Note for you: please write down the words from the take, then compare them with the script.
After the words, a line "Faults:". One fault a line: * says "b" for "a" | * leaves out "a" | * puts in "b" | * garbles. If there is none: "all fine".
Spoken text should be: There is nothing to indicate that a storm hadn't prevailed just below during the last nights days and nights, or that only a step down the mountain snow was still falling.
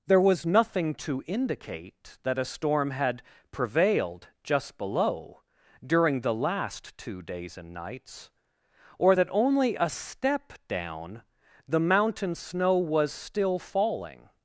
There was nothing to indicate that a storm had prevailed just below during the last two days and nights, or that only a step down the mountain snow was still falling.
Faults:
* says "was" for "is"
* says "had" for "hadn't"
* says "two" for "nights"